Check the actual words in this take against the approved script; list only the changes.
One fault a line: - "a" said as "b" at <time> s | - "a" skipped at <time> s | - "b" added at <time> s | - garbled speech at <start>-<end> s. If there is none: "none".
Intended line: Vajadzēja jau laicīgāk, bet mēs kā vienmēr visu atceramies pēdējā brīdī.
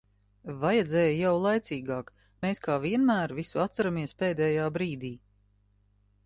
- "bet" skipped at 2.1 s